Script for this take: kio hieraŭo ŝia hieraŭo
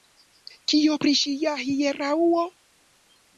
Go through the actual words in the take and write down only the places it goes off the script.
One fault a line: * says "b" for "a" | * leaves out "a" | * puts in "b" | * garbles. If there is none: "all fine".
* says "pri" for "hieraŭo"